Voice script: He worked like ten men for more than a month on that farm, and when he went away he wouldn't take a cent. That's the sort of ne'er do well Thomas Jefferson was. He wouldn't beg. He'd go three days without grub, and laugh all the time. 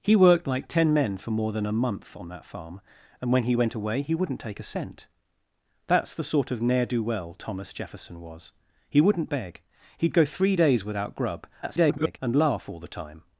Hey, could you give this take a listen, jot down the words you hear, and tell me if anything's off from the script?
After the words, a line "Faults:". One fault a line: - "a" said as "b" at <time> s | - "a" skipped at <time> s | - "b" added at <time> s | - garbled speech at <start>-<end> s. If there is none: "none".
He worked like ten men for more than a month on that farm, and when he went away he wouldn't take a cent. That's the sort of ne'er do well Thomas Jefferson was. He wouldn't beg. He'd go three days without grub, [garbled] and laugh all the time.
Faults:
- garbled speech at 11.6-12.2 s